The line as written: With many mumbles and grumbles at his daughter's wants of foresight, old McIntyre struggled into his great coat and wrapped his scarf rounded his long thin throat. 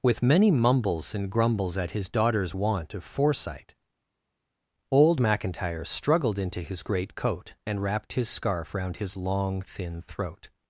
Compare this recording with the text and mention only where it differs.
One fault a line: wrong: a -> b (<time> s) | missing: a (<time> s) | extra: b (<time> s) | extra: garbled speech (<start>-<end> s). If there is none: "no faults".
wrong: wants -> want (2.5 s)
wrong: rounded -> round (8.7 s)